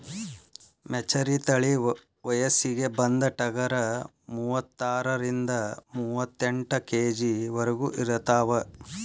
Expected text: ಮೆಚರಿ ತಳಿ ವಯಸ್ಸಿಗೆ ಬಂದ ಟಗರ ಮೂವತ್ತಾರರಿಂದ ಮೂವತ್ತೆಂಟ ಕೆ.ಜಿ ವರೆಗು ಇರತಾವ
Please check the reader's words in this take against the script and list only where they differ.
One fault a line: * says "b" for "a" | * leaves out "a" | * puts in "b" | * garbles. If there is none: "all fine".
all fine